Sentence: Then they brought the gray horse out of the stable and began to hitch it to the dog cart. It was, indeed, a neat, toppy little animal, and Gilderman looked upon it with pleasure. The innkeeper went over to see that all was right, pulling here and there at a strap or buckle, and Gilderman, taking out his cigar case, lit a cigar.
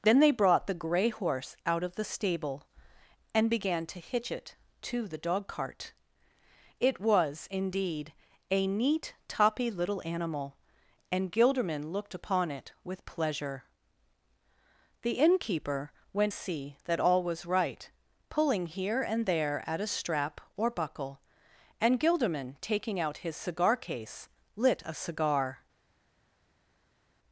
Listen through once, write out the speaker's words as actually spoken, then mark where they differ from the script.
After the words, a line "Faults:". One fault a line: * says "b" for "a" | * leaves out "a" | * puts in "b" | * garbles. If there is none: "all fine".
Then they brought the gray horse out of the stable and began to hitch it to the dog cart. It was, indeed, a neat, toppy little animal, and Gilderman looked upon it with pleasure. The innkeeper went see that all was right, pulling here and there at a strap or buckle, and Gilderman, taking out his cigar case, lit a cigar.
Faults:
* leaves out "over to"